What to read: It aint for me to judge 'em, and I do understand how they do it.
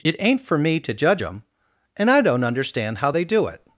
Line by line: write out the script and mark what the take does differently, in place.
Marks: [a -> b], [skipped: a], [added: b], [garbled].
It aint for me to judge 'em, and I [do -> don't] understand how they do it.